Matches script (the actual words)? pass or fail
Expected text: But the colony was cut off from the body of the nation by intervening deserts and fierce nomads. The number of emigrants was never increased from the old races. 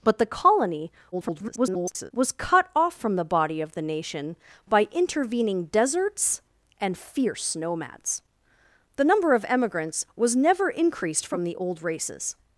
fail